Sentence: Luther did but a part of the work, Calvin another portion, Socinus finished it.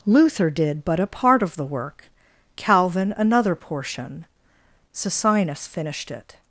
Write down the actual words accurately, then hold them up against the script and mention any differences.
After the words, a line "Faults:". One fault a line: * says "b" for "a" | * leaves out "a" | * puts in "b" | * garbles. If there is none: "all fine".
Luther did but a part of the work, Calvin another portion, Socinus finished it.
Faults:
all fine